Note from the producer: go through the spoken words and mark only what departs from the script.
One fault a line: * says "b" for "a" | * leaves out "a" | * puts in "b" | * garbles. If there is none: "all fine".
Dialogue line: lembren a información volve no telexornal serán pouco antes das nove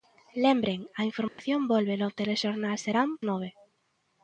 * leaves out "pouco antes das"